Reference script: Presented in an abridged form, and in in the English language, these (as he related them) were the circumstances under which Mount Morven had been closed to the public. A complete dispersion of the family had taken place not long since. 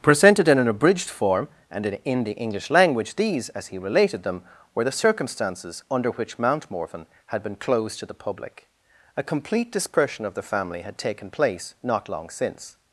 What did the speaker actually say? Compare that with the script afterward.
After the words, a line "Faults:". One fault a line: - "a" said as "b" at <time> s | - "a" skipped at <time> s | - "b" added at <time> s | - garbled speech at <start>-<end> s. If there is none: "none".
Presented in an abridged form, and in in the English language, these (as he related them) were the circumstances under which Mount Morven had been closed to the public. A complete dispersion of the family had taken place not long since.
Faults:
none